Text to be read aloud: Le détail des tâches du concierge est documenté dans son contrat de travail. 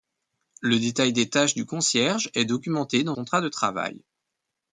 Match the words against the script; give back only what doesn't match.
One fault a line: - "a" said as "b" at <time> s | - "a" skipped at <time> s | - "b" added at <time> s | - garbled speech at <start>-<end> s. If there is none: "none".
- "son" skipped at 3.1 s